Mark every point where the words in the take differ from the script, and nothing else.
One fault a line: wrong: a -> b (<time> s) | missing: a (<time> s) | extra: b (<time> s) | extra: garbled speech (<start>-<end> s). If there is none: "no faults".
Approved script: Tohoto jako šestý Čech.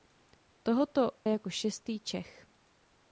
no faults